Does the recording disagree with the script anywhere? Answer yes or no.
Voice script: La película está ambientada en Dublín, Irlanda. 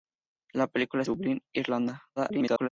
yes